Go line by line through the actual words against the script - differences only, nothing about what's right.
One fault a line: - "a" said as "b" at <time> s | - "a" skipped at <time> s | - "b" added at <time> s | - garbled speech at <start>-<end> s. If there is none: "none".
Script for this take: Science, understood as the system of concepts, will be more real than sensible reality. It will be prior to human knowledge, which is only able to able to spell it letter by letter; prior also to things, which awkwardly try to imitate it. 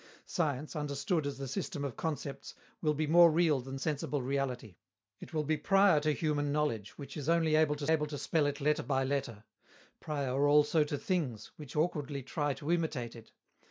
none